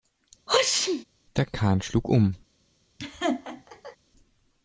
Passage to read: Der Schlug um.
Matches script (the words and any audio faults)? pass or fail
fail